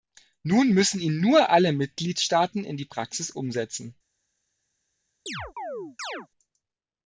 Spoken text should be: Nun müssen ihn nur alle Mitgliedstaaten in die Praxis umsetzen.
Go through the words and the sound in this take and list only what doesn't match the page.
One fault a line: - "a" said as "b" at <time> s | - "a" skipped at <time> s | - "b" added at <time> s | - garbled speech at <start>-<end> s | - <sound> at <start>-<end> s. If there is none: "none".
- chirp at 5.3-6.3 s